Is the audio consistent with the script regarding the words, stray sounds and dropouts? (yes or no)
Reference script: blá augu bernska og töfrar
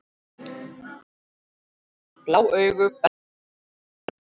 yes